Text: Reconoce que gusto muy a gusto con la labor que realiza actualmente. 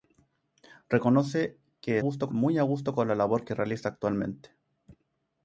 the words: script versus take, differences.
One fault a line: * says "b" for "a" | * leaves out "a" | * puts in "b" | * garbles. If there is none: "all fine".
all fine